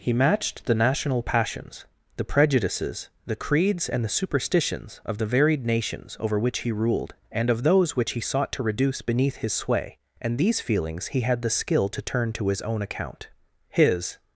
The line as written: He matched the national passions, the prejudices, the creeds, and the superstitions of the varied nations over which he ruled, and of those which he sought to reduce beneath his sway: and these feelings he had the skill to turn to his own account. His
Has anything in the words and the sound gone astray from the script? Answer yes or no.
no